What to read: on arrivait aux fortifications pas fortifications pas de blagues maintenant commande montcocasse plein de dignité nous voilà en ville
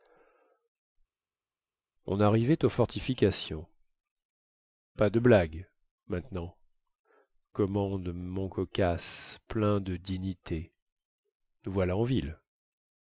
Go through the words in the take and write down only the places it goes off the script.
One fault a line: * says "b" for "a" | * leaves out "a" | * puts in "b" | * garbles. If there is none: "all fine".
* leaves out "fortifications pas"